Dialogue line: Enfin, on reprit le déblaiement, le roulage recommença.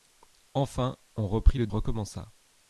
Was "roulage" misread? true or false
true